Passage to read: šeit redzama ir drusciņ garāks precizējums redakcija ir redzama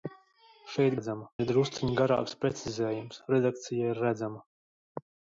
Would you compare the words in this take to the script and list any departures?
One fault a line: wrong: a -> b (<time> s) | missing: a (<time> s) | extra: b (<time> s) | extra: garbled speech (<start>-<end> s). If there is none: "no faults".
no faults